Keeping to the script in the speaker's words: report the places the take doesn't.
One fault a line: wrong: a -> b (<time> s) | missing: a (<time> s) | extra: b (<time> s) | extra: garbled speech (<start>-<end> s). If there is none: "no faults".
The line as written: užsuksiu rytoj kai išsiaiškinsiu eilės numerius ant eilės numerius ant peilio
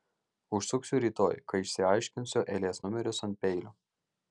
missing: eilės numerius ant (3.4 s)